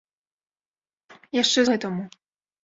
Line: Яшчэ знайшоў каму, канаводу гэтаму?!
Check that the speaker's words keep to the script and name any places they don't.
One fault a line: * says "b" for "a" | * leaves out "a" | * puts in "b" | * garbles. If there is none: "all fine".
* leaves out "знайшоў каму канаводу"